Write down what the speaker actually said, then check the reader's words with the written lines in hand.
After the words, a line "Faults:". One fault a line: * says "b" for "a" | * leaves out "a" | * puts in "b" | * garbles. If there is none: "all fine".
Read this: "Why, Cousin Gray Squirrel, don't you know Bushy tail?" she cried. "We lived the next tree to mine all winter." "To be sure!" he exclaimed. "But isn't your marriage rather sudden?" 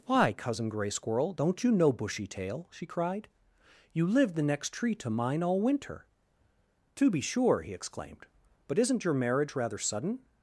"Why, Cousin Gray Squirrel, don't you know Bushy tail?" she cried. "You lived the next tree to mine all winter." "To be sure!" he exclaimed. "But isn't your marriage rather sudden?"
Faults:
* says "You" for "We"